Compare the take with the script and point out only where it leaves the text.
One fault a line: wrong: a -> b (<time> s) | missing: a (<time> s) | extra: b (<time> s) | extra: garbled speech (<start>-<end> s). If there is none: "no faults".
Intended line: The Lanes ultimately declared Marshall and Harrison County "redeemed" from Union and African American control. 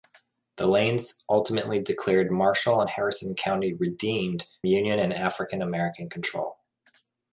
missing: from (4.5 s)